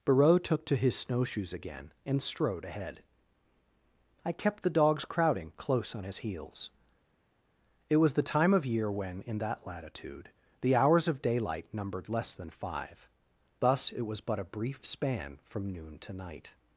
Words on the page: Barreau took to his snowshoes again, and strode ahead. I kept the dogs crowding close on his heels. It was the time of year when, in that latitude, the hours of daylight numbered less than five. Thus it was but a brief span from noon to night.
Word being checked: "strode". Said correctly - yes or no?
yes